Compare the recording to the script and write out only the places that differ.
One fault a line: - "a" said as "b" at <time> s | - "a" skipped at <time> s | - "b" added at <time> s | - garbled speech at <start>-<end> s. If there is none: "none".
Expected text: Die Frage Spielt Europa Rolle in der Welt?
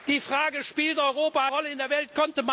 none